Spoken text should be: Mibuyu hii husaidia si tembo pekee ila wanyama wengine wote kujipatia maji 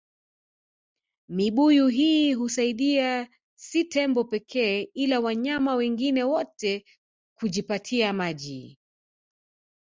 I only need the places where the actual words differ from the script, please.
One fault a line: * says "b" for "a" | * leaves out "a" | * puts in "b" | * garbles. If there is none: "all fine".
all fine